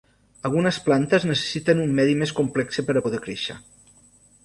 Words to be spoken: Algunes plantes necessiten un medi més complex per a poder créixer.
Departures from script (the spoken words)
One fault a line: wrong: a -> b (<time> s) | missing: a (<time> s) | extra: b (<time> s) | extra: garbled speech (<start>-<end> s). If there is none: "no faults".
no faults